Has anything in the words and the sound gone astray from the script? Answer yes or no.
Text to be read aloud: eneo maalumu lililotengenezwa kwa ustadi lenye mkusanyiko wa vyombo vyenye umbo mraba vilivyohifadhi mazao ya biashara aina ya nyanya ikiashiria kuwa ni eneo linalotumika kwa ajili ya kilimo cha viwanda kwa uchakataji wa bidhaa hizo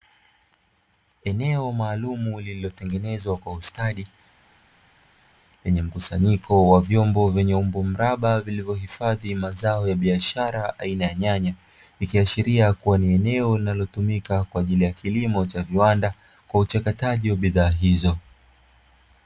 no